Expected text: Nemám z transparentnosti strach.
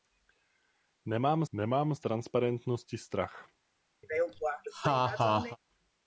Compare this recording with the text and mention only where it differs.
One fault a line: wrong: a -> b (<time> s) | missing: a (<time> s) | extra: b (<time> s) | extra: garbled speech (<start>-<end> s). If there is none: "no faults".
extra: nemám (1.5 s)